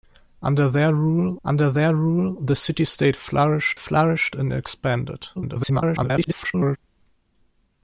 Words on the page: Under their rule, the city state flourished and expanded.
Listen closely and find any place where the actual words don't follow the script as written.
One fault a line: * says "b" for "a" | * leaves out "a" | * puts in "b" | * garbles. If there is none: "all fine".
* puts in "under their rule"
* puts in "flourished"
* garbles